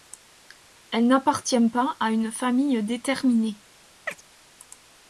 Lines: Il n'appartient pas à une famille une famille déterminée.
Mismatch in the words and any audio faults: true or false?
true